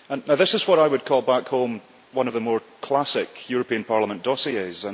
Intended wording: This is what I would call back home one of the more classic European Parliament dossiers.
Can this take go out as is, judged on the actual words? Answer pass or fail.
pass